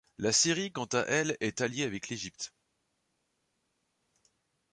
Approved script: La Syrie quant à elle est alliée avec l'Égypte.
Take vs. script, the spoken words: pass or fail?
pass